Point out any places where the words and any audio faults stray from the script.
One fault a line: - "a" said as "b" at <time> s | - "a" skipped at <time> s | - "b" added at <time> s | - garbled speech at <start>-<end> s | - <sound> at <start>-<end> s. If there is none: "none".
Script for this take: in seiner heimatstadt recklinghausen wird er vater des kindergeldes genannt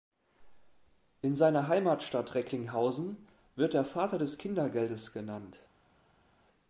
none